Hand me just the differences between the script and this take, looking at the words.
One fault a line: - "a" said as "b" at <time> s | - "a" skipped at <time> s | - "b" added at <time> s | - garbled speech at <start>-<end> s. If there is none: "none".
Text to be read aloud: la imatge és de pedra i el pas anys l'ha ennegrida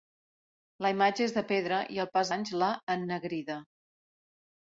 none